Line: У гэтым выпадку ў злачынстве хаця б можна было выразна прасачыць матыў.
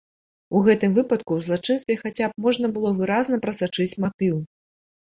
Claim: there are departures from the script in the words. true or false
false